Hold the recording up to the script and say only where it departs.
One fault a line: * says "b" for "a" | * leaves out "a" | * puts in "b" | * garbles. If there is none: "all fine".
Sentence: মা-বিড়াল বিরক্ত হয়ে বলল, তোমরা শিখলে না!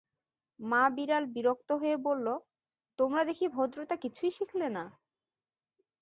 * puts in "দেখি ভদ্রতা কিছুই"